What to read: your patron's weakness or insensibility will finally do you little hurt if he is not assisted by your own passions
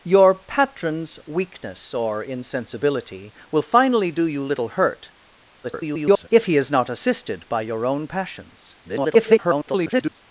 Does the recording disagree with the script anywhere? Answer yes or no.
yes